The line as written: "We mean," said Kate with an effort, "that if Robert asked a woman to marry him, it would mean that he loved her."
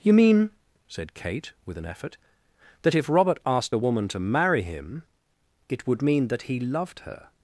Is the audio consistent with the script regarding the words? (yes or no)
no